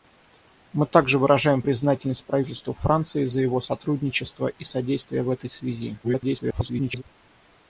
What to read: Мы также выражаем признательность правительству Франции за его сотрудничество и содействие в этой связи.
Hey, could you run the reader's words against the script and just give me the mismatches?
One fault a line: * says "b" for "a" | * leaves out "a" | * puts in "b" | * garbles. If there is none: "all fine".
* garbles